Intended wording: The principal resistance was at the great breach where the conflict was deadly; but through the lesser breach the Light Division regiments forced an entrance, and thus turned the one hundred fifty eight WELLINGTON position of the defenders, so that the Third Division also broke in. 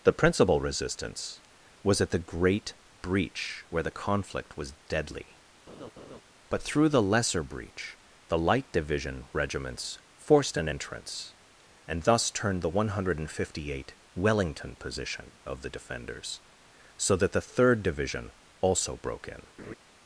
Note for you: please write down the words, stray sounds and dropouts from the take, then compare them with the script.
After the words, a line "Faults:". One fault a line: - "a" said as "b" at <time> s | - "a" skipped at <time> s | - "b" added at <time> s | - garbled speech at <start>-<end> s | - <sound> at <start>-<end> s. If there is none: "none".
The principal resistance was at the great breach where the conflict was deadly; but through the lesser breach the Light Division regiments forced an entrance, and thus turned the one hundred fifty eight WELLINGTON position of the defenders, so that the Third Division also broke in.
Faults:
- laugh at 5.7-6.2 s
- laugh at 19.6-19.7 s